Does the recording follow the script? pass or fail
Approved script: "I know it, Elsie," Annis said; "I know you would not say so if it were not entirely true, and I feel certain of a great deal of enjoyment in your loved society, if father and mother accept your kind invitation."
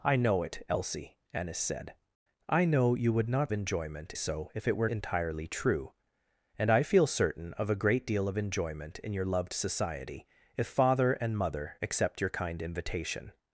fail